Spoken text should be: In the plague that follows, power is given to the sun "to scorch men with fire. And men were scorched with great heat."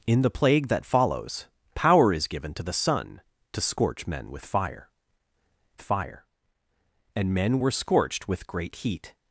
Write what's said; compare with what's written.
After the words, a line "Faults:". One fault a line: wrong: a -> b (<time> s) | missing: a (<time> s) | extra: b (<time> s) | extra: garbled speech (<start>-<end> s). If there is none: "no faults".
In the plague that follows, power is given to the sun "to scorch men with fire fire. And men were scorched with great heat."
Faults:
extra: fire (5.8 s)